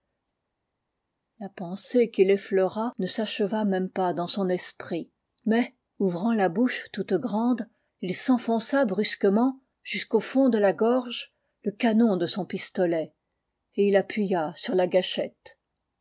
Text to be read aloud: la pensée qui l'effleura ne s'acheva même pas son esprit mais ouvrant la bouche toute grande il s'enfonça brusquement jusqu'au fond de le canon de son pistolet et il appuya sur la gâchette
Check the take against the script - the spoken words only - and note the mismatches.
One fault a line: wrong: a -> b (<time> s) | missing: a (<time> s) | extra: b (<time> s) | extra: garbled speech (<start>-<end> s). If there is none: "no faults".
extra: dans (4.1 s)
extra: la gorge (10.6 s)